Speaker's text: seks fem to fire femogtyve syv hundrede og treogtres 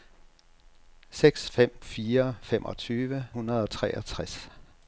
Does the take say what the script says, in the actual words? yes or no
no